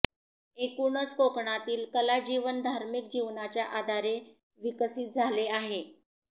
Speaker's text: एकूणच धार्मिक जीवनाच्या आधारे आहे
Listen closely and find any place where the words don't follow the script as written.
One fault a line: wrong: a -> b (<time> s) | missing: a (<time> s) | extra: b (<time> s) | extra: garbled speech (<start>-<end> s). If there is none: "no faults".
extra: कोकणातील कलाजीवन (1.1 s)
extra: विकसित झाले (4.6 s)